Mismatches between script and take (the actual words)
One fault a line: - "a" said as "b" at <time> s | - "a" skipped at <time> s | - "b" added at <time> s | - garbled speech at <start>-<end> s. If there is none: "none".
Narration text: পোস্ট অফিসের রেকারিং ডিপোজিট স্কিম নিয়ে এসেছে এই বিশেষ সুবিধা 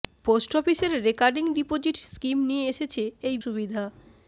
- "বিশেষ" skipped at 3.4 s